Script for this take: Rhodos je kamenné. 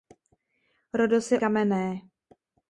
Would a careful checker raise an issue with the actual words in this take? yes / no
no